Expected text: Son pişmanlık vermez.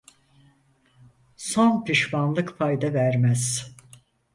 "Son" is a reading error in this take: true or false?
false